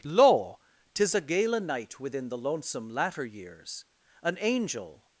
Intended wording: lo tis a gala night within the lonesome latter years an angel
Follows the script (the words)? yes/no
yes